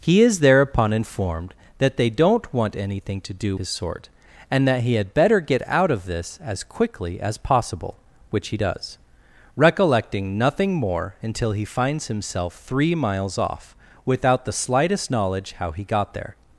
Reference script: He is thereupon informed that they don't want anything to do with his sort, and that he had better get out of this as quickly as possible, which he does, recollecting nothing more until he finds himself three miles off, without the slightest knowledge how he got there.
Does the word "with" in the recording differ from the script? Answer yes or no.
yes